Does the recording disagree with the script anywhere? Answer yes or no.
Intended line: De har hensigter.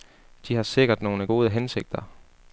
yes